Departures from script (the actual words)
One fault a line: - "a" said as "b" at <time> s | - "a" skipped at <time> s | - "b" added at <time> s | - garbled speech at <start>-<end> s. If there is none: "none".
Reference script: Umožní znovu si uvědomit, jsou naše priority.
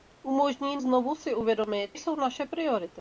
none